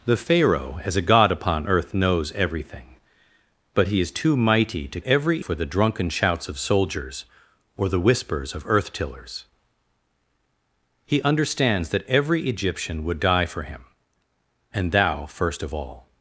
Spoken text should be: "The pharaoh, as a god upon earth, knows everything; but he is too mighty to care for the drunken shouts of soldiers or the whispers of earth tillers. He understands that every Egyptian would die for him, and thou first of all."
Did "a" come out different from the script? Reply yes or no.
no